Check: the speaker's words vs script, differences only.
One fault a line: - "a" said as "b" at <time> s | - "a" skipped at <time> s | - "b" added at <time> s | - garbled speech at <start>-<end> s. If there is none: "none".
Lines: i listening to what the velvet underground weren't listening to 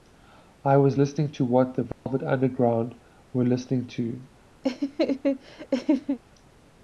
- "was" added at 0.8 s
- "weren't" said as "were" at 3.3 s